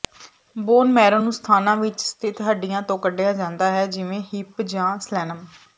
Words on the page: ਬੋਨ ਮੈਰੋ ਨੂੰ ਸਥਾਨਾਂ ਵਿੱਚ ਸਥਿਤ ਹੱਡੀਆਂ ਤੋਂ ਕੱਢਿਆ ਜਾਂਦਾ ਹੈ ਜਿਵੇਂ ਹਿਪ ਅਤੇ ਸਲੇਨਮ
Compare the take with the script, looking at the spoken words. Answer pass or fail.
fail